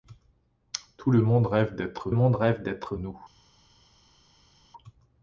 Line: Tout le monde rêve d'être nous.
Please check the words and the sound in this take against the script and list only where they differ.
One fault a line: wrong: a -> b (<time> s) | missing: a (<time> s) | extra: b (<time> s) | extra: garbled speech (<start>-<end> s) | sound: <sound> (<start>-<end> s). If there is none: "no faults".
extra: monde rêve d'être (2.1 s)